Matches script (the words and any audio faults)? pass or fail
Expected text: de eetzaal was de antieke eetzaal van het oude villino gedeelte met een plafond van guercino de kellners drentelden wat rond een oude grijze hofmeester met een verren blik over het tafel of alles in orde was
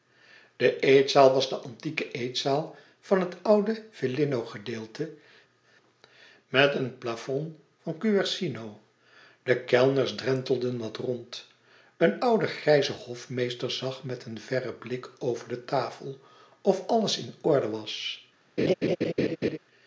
fail